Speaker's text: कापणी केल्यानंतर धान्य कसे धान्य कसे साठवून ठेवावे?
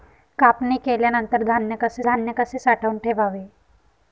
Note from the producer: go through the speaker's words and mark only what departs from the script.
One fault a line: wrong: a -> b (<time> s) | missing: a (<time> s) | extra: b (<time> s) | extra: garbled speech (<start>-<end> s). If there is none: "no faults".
no faults